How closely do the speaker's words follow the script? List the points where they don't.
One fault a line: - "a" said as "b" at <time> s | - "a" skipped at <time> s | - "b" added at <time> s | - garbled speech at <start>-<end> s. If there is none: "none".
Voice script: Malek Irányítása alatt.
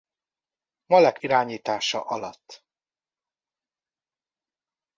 none